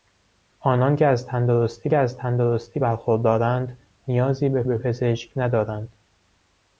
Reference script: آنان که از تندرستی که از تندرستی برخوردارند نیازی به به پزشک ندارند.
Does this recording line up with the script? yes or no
yes